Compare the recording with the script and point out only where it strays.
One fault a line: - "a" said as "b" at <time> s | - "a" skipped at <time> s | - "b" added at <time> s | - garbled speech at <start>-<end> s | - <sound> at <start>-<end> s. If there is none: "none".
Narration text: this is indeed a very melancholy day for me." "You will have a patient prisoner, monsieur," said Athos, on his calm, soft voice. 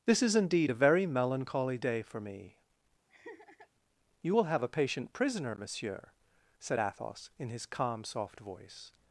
- laugh at 3.1-3.7 s
- "on" said as "in" at 7.4 s